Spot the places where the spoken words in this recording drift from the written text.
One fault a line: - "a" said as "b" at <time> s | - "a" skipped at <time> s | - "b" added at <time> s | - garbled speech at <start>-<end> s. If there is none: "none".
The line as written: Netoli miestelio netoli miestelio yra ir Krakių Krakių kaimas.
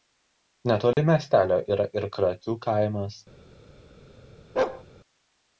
- "netoli miestelio" skipped at 1.6 s
- "Krakių" skipped at 2.6 s